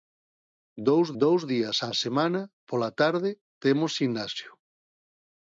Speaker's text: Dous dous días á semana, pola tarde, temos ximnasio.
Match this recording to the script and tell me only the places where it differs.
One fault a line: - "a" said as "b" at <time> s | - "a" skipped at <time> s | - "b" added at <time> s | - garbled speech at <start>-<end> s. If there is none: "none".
none